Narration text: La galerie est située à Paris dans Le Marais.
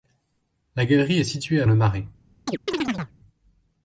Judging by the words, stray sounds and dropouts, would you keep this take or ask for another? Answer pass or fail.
fail